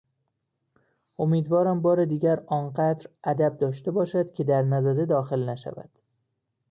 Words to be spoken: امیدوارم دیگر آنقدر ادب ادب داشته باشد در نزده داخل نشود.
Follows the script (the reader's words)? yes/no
no